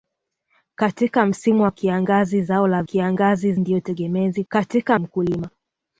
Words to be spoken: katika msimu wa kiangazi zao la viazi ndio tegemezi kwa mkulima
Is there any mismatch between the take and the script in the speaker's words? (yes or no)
yes